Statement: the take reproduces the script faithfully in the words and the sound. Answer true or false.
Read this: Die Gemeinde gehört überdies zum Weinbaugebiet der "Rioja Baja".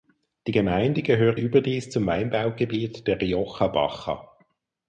true